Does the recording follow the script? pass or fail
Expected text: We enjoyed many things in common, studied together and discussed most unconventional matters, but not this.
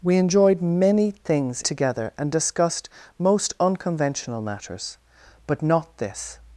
fail